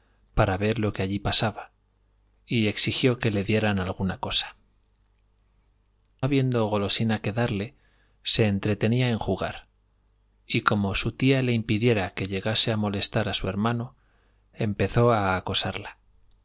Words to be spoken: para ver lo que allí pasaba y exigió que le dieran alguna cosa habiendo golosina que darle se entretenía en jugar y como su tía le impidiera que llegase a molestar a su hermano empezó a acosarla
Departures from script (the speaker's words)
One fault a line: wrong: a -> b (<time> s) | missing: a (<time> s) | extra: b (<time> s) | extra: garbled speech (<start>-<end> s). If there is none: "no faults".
no faults